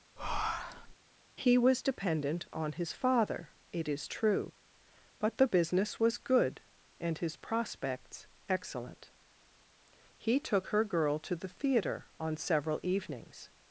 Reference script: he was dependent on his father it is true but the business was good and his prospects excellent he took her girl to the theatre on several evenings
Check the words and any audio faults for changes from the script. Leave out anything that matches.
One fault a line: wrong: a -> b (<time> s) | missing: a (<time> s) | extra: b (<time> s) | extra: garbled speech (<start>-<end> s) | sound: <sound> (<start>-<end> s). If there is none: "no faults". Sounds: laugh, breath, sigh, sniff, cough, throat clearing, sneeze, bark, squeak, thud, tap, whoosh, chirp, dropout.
sound: breath (0.2-0.9 s)